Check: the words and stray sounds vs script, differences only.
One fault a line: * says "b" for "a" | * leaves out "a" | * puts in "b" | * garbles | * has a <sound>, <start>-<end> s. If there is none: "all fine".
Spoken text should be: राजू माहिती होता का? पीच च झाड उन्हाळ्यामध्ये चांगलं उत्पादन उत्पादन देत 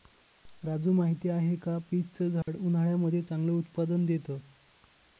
* says "आहे" for "होता"
* has a dropout, 2.4-2.5 s
* leaves out "उत्पादन"